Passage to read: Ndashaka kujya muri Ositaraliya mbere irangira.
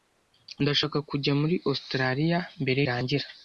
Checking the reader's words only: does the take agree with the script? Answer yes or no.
yes